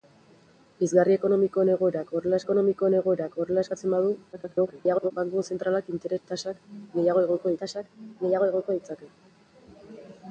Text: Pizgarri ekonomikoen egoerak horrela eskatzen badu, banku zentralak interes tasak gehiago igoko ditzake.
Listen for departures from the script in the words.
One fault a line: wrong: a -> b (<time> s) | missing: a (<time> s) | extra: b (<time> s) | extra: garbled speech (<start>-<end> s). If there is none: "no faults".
extra: ekonomikoen egoerak horrela (2.4 s)
extra: garbled speech (4.3-5.1 s)
extra: tasak gehiago igoko (7.6 s)